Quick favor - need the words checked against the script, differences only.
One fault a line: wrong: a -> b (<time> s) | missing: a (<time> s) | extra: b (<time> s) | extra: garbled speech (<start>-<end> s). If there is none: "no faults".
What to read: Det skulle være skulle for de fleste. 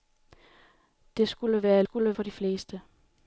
no faults